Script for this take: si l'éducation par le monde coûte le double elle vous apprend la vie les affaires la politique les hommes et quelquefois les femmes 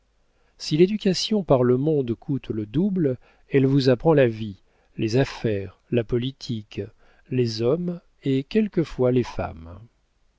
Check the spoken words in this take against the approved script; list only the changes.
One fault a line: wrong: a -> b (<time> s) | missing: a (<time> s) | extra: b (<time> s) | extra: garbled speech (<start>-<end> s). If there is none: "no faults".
no faults